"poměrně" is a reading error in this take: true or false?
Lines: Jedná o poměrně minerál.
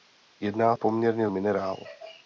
false